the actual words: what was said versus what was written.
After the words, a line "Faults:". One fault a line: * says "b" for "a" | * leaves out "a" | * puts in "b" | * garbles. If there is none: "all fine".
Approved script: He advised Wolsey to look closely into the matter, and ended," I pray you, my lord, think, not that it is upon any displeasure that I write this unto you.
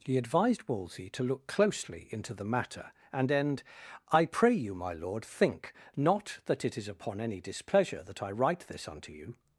He advised Wolsey to look closely into the matter, and end," I pray you, my lord, think, not that it is upon any displeasure that I write this unto you.
Faults:
* says "end" for "ended"